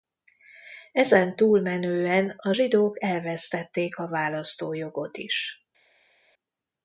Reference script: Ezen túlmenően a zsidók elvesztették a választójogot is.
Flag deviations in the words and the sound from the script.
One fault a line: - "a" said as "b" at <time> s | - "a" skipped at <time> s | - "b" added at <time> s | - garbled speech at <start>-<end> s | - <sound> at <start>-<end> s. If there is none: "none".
none